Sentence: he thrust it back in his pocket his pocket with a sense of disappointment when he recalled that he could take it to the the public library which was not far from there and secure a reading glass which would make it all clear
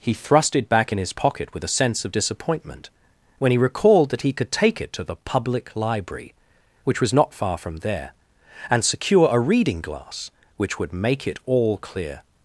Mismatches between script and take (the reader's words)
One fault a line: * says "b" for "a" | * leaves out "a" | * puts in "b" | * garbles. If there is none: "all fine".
* leaves out "his pocket"
* leaves out "the"